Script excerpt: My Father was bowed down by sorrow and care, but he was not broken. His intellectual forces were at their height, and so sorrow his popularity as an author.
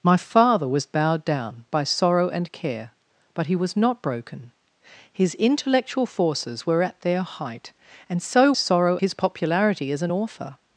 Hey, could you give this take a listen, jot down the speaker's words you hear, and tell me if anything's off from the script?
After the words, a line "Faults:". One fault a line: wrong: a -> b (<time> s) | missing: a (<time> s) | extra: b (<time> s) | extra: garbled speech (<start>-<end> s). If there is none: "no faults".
My Father was bowed down by sorrow and care, but he was not broken. His intellectual forces were at their height, and so sorrow his popularity as an author.
Faults:
no faults